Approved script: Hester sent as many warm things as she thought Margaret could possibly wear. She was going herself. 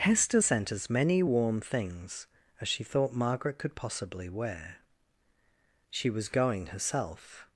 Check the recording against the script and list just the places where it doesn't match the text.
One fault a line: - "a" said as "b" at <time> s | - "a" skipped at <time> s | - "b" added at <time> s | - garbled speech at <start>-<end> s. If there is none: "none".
none